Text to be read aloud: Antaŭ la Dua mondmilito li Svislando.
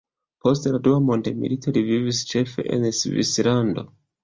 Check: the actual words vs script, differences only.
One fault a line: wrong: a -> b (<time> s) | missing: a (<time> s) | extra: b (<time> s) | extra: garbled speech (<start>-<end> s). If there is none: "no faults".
wrong: Antaŭ -> Post (0.5 s)
extra: vivis ĉefe en (1.9 s)